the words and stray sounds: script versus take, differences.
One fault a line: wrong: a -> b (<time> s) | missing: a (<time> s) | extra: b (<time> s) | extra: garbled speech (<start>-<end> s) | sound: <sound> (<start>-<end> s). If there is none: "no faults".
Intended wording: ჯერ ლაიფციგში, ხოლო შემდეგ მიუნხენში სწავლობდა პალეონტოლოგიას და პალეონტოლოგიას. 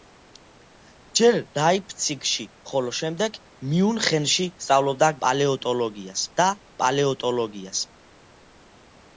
no faults